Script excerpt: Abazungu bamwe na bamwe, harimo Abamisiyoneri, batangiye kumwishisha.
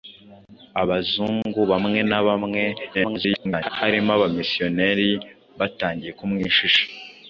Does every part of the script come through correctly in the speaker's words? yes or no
no